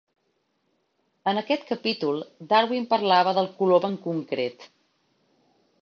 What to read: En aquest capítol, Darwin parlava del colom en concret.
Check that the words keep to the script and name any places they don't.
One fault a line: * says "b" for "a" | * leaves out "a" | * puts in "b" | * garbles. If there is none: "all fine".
all fine